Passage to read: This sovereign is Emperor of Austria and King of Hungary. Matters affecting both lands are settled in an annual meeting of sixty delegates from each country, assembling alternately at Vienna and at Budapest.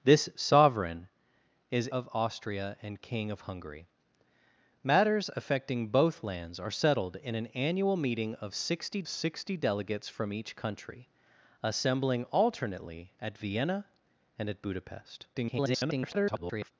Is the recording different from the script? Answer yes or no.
yes